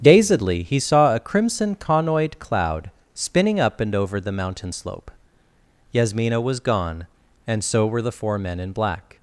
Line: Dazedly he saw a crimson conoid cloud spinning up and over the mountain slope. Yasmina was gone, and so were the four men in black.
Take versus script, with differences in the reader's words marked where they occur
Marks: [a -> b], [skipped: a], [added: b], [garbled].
Dazedly he saw a crimson conoid cloud spinning up and over the mountain slope. Yasmina was gone, and so were the four men in black.